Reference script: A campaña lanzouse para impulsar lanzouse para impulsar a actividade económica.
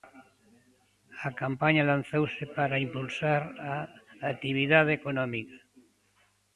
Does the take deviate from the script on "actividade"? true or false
false